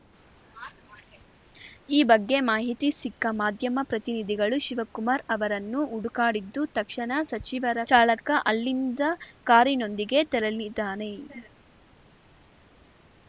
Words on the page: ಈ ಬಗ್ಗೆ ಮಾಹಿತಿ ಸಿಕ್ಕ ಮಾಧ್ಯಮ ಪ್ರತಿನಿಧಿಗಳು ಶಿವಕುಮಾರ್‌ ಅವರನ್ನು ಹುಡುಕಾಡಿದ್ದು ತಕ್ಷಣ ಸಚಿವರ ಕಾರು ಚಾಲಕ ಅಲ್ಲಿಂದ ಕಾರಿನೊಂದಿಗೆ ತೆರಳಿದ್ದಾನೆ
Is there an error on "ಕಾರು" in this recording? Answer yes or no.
yes